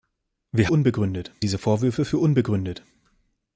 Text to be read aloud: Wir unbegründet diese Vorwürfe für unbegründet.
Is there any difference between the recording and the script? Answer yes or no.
no